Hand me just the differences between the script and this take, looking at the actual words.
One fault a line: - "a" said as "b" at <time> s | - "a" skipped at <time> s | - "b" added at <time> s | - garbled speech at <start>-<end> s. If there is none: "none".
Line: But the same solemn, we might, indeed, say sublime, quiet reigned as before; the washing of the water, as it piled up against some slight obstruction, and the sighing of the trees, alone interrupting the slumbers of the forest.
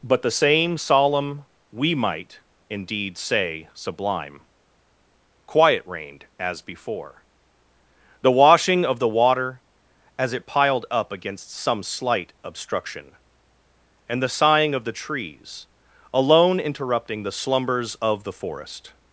none